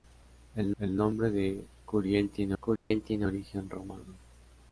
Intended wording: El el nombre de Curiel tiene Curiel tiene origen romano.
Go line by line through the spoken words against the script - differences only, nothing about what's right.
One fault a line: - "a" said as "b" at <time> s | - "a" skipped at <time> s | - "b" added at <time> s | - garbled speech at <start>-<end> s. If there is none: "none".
none